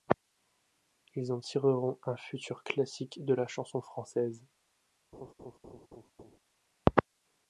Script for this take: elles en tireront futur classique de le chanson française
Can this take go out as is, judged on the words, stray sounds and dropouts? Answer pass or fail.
fail